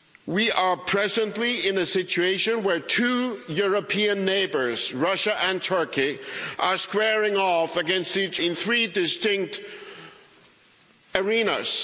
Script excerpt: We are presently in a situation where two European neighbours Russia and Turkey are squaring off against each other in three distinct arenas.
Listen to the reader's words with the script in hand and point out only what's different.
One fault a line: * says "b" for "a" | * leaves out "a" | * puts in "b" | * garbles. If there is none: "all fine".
* leaves out "other"